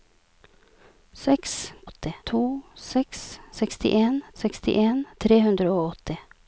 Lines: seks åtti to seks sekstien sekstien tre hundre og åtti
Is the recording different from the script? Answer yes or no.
no